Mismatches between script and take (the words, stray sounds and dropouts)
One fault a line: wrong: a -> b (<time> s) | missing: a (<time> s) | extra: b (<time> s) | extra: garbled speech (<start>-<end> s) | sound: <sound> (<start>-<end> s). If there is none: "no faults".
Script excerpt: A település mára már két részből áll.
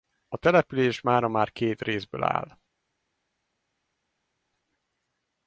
no faults